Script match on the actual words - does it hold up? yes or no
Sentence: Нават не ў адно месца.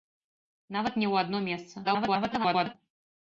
no